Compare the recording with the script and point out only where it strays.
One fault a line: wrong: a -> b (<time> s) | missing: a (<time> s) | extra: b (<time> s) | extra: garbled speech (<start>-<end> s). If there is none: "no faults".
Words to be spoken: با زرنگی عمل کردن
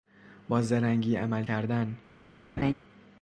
no faults